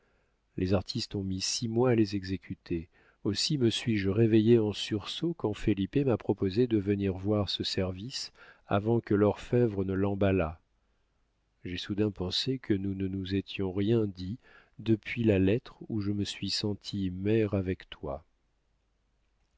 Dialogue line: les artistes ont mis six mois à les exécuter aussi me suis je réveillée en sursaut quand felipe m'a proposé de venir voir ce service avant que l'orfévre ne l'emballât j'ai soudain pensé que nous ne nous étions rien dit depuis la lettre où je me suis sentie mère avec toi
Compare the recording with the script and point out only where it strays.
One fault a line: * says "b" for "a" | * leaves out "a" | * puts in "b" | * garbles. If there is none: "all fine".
all fine